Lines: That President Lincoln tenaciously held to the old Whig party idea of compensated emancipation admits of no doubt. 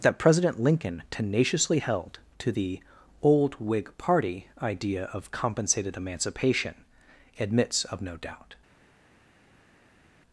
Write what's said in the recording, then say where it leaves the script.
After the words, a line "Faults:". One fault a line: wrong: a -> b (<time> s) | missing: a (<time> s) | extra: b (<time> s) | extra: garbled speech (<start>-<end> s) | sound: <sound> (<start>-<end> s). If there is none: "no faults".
That President Lincoln tenaciously held to the old Whig party idea of compensated emancipation admits of no doubt.
Faults:
no faults